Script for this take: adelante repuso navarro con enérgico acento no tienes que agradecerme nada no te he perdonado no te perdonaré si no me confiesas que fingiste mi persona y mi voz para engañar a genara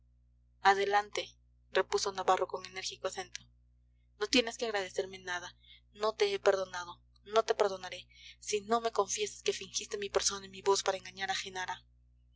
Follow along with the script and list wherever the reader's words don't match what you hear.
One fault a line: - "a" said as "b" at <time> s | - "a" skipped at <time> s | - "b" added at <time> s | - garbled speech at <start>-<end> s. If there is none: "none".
none